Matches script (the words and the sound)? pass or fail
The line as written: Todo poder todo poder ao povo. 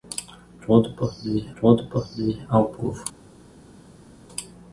pass